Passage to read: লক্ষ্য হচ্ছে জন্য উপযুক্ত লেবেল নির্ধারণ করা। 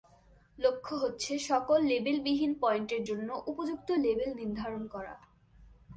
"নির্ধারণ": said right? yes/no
yes